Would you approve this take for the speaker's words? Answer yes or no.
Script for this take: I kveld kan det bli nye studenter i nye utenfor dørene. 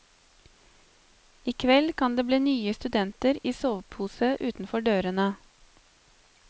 no